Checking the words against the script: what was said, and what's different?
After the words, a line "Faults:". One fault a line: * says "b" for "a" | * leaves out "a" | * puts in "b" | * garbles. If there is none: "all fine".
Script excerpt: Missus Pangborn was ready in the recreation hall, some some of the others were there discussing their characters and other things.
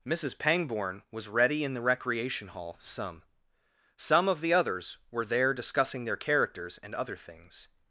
Missus Pangborn was ready in the recreation hall, some some of the others were there discussing their characters and other things.
Faults:
all fine